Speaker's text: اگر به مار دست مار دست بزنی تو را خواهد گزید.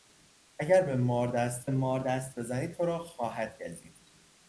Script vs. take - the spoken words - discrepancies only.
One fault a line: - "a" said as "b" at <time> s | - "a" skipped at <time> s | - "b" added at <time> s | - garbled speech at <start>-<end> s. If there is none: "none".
none